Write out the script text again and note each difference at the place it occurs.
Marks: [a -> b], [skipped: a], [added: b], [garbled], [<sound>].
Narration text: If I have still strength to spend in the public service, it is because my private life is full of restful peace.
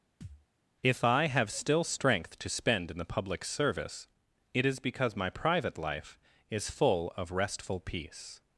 [thud] If I have still strength to spend in the public service, it is because my private life is full of restful peace.